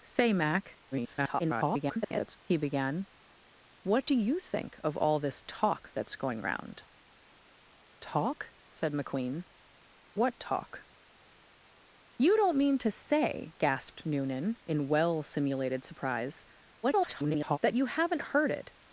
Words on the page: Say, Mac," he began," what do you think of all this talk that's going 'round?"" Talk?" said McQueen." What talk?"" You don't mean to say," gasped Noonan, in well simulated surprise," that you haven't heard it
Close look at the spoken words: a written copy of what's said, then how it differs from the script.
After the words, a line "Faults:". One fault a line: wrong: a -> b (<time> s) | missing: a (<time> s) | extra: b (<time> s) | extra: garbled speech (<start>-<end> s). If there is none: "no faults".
Say, Mac," [garbled] he began," what do you think of all this talk that's going 'round?"" Talk?" said McQueen." What talk?"" You don't mean to say," gasped Noonan, in well simulated surprise," [garbled] that you haven't heard it
Faults:
extra: garbled speech (0.9-2.4 s)
extra: garbled speech (16.8-17.6 s)